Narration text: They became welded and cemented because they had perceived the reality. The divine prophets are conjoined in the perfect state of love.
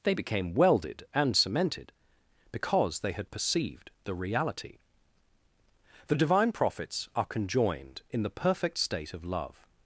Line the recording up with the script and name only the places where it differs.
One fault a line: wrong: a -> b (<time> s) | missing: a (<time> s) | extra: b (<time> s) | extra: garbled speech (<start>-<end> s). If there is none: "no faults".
no faults